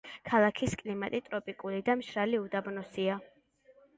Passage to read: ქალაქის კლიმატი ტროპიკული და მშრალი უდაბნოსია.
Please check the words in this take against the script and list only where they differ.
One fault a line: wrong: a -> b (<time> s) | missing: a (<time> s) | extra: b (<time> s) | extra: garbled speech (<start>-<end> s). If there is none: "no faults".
no faults